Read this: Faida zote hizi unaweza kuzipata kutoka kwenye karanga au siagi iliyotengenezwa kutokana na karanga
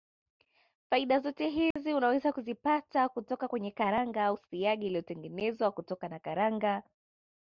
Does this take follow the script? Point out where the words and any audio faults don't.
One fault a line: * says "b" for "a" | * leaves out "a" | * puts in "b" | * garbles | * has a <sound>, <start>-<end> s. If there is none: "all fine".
* has a dropout, 1.7-1.8 s